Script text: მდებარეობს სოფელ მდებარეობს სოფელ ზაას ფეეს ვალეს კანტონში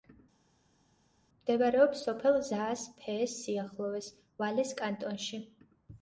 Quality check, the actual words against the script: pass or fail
fail